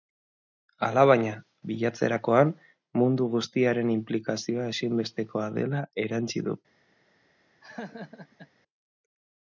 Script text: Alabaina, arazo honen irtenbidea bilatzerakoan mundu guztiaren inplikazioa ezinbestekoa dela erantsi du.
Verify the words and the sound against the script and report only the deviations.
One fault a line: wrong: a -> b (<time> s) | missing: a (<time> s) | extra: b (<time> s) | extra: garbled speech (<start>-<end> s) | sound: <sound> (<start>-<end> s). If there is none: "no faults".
missing: arazo honen irtenbidea (1.3 s)
sound: laugh (7.6-8.5 s)